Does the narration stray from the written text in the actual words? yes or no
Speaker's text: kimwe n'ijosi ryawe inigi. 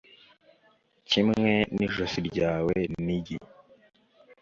no